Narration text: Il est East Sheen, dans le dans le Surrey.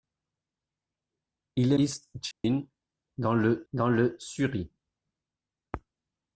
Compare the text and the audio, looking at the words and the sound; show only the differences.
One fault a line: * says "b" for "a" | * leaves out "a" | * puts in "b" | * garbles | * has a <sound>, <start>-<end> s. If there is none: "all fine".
* has a dropout, 2.3-2.4 s